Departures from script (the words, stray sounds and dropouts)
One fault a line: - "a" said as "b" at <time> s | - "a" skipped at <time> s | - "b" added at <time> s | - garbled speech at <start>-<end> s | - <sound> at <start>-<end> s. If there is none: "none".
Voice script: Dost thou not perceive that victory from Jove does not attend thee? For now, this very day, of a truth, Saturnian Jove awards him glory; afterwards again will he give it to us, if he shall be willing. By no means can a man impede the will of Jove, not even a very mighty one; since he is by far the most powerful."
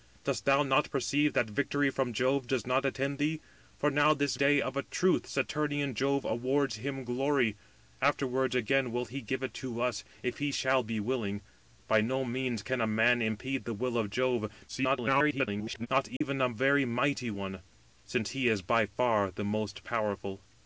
- "very" skipped at 4.3 s
- garbled speech at 14.7-15.9 s
- dropout at 16.2-16.2 s